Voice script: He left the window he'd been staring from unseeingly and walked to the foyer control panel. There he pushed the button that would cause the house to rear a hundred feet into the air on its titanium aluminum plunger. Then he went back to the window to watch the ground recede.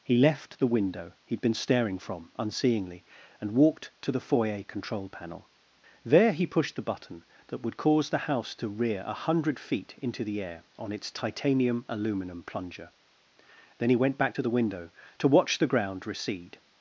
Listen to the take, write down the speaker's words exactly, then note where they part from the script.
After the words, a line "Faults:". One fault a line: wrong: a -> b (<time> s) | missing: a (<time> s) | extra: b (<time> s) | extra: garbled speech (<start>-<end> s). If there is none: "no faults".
He left the window he'd been staring from unseeingly and walked to the foyer control panel. There he pushed the button that would cause the house to rear a hundred feet into the air on its titanium aluminum plunger. Then he went back to the window to watch the ground recede.
Faults:
no faults